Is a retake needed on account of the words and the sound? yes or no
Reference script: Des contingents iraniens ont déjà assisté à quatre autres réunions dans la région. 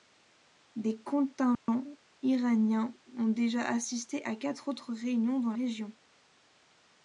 yes